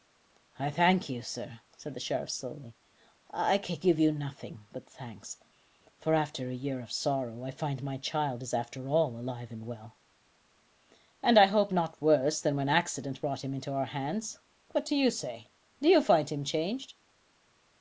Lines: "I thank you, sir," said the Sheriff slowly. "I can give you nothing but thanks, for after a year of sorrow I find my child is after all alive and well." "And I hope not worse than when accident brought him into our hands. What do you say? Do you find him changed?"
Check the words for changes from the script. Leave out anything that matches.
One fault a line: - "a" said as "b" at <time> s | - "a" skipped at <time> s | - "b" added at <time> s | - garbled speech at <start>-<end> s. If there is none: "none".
none